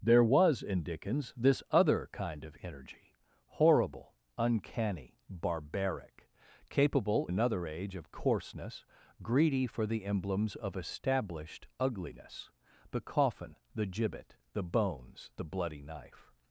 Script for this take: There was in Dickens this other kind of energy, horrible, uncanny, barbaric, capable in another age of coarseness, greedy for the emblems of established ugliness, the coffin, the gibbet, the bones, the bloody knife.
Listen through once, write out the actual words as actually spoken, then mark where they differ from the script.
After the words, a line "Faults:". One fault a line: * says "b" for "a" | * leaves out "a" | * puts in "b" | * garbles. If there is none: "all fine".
There was in Dickens this other kind of energy, horrible, uncanny, barbaric, capable another age of coarseness, greedy for the emblems of established ugliness, the coffin, the gibbet, the bones, the bloody knife.
Faults:
* leaves out "in"